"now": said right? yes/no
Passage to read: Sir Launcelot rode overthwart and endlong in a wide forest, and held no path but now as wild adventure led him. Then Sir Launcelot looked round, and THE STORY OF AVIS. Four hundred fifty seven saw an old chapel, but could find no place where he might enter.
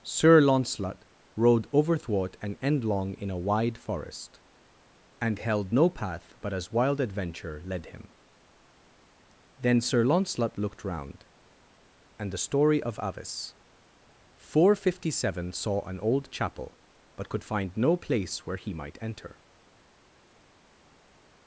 no